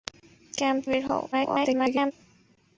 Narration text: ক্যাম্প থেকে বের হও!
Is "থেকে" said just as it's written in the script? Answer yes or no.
no